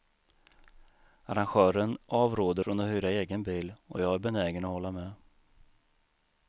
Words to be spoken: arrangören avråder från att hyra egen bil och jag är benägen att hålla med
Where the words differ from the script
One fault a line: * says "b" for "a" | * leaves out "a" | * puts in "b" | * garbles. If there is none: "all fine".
all fine